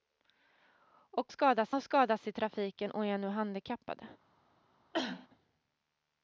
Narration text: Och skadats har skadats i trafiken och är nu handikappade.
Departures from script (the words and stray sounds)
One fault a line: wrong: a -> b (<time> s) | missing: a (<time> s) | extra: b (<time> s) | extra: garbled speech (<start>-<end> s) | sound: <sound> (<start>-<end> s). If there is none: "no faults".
sound: cough (4.9-5.3 s)